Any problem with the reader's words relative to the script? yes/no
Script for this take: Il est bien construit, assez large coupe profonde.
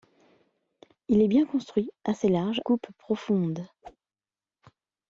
no